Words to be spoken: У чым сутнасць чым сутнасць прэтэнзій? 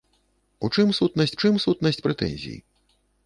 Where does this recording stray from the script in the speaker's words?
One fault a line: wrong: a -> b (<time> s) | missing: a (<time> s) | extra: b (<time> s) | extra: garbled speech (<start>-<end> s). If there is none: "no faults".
no faults